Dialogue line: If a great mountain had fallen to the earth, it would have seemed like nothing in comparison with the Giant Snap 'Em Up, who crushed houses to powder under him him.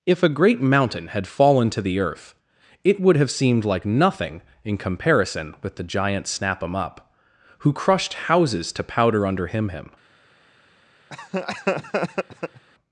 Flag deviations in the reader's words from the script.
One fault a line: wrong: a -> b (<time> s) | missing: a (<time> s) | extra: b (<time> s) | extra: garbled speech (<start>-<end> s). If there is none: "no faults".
no faults